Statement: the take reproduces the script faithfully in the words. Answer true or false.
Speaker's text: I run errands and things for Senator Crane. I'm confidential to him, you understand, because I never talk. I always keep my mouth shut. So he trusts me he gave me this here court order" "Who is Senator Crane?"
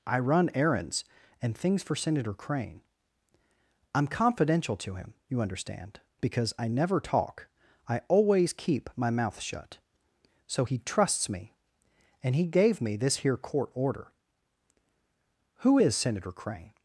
false